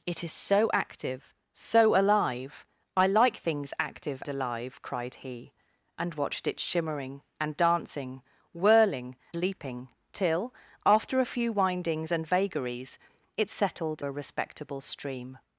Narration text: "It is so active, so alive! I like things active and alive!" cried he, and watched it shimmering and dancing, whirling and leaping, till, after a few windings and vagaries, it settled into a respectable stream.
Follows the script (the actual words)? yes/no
no